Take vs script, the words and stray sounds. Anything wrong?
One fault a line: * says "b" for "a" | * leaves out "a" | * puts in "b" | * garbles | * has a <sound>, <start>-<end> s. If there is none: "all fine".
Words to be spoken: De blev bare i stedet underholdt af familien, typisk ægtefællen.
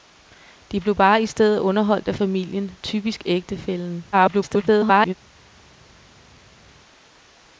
* garbles